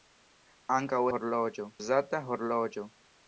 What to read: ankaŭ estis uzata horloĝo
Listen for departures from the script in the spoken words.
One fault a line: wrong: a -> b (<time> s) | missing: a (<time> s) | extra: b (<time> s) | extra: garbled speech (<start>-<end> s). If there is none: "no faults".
wrong: estis -> horloĝo (1.1 s)